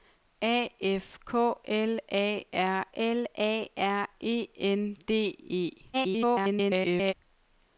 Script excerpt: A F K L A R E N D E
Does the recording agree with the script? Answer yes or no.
no